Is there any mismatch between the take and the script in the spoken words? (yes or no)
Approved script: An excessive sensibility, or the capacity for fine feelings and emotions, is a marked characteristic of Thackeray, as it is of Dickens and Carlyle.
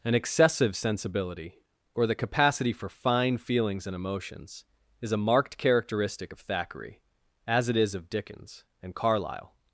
no